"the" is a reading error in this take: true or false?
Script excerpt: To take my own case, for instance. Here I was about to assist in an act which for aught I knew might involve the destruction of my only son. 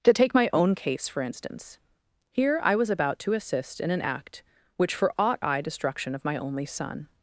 true